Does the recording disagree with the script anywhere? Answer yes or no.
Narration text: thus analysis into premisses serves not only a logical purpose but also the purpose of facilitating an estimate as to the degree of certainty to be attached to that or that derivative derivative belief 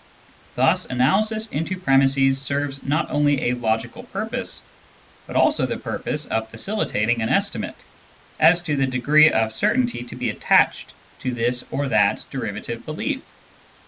yes